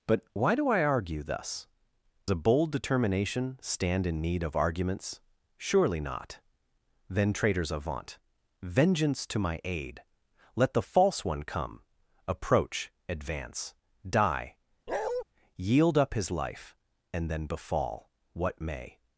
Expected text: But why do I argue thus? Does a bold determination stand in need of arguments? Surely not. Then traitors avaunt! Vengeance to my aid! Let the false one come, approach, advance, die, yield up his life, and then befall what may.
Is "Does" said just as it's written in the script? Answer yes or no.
no